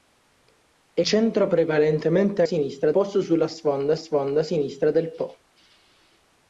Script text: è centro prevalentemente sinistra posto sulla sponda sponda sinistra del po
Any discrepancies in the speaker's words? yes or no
no